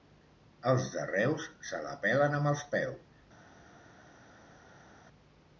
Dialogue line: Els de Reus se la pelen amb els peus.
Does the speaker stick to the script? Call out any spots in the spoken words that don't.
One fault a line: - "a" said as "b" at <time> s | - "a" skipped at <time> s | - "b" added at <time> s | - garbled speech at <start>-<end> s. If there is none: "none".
none